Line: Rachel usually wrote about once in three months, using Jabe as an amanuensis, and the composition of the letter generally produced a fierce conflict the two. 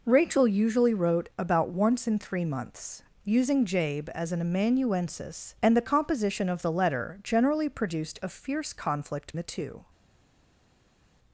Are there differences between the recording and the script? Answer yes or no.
no